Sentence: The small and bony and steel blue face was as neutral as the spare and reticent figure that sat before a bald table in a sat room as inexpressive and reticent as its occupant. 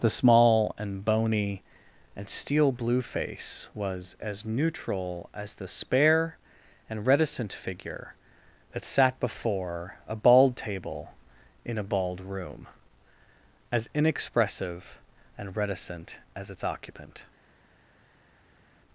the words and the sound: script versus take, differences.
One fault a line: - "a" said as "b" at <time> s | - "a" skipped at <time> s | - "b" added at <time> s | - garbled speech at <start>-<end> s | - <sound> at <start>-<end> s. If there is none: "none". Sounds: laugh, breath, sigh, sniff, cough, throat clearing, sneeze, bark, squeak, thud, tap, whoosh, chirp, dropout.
- "sat" said as "bald" at 11.8 s